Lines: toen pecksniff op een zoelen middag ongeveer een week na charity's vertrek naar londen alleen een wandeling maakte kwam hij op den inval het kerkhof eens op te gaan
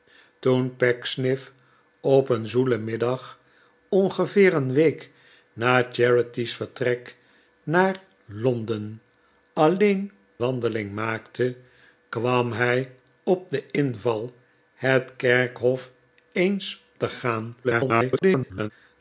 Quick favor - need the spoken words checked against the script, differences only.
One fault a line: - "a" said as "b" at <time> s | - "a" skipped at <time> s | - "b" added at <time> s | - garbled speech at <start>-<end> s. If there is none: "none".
- "een" skipped at 10.1 s
- "op" skipped at 16.8 s
- garbled speech at 17.6-18.7 s